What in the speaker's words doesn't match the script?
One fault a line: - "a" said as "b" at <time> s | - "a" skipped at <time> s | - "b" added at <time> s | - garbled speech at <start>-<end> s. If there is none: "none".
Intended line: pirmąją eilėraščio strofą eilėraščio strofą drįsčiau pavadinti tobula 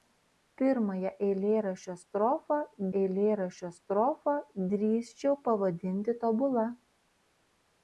none